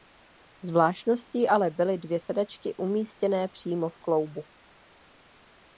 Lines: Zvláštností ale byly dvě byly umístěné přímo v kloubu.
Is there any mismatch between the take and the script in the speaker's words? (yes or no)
yes